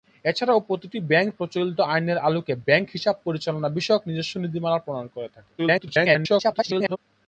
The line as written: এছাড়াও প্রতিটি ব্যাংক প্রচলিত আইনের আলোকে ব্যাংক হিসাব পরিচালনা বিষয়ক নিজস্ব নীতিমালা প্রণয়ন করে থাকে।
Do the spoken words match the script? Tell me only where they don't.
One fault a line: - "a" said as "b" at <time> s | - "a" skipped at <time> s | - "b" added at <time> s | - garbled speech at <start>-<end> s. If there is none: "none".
- garbled speech at 5.6-7.0 s